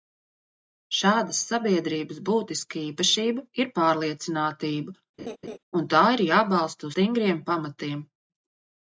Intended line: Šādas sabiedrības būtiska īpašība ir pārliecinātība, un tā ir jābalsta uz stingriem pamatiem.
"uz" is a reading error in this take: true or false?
true